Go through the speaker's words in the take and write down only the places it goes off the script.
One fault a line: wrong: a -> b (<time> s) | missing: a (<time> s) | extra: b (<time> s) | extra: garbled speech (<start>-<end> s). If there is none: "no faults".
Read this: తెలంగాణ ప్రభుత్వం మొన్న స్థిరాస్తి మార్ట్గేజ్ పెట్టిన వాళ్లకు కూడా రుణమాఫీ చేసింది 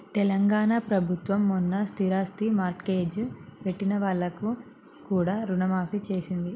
no faults